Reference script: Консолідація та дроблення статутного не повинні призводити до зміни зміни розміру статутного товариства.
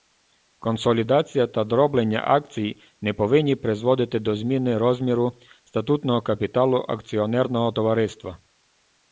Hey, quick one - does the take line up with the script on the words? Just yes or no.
no